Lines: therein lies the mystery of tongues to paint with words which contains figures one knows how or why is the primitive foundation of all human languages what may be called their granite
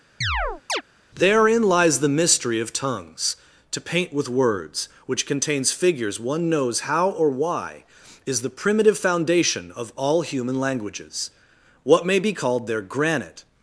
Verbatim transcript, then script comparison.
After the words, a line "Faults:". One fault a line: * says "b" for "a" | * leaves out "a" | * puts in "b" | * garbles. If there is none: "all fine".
therein lies the mystery of tongues to paint with words which contains figures one knows how or why is the primitive foundation of all human languages what may be called their granite
Faults:
all fine